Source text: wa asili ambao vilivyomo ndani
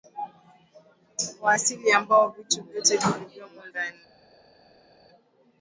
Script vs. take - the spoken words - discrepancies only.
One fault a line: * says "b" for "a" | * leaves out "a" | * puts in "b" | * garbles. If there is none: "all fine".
* puts in "vitu vyote"